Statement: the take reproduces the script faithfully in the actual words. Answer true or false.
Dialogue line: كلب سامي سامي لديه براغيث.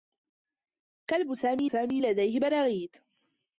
true